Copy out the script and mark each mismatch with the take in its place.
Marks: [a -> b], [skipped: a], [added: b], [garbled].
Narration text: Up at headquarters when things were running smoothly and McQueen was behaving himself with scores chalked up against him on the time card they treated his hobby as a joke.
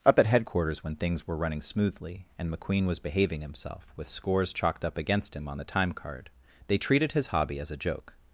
Up at headquarters when things were running smoothly and McQueen was behaving himself with scores chalked up against him on the time card they treated his hobby as a joke.